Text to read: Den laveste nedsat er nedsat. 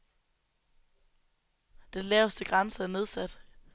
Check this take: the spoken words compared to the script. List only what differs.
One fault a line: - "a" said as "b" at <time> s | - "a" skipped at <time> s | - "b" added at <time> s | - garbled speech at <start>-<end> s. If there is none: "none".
- "nedsat" said as "grænse" at 2.4 s